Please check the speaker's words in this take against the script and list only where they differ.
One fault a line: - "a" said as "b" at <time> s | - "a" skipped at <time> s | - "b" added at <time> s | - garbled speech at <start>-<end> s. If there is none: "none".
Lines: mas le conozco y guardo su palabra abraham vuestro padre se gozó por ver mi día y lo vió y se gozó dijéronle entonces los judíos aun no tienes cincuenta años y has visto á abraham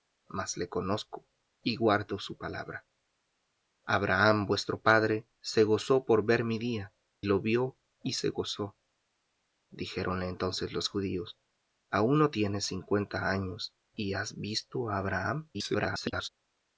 - "y" skipped at 7.0 s
- garbled speech at 15.5-16.3 s